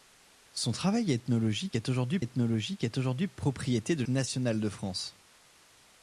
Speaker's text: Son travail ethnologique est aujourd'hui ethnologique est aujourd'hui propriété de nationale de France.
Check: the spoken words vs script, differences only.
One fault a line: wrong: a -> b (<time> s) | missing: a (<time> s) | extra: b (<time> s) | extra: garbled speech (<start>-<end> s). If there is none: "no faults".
no faults